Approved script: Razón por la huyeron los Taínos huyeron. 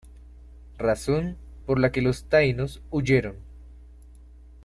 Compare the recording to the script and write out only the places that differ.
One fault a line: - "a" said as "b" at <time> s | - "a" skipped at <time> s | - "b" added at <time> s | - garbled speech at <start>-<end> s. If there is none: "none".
- "huyeron" said as "que" at 1.9 s